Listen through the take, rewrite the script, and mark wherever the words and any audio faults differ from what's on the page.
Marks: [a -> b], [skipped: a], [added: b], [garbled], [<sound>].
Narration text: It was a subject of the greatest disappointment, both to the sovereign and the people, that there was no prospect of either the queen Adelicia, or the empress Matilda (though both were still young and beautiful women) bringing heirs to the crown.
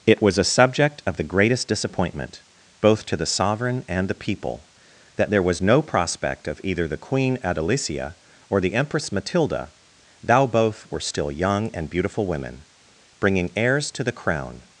It was a subject of the greatest disappointment, both to the sovereign and the people, that there was no prospect of either the queen Adelicia, or the empress Matilda [(though -> thou] both were still young and beautiful women) bringing heirs to the crown.